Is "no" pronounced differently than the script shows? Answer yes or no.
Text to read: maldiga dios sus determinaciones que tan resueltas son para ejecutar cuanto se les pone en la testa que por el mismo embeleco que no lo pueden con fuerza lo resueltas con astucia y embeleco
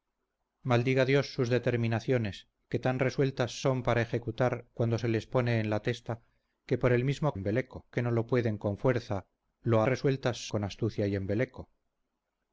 no